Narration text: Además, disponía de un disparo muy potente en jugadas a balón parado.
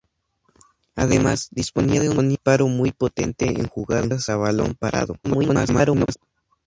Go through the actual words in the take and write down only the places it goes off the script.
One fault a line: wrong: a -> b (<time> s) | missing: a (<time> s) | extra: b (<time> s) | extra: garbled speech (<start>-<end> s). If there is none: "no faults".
extra: garbled speech (5.2-6.2 s)